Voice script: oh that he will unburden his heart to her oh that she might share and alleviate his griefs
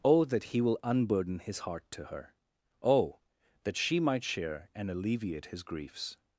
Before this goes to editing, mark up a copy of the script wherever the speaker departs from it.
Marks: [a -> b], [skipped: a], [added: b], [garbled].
oh that he will unburden his heart to her oh that she might share and alleviate his griefs